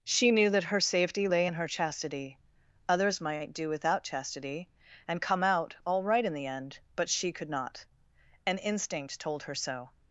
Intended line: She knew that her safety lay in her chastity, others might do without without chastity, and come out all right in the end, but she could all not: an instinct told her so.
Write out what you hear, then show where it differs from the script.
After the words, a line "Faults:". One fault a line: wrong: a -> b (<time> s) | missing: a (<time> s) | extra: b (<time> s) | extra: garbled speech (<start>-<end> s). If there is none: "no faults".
She knew that her safety lay in her chastity, others might do without chastity, and come out all right in the end, but she could not: an instinct told her so.
Faults:
missing: without (4.0 s)
missing: all (7.5 s)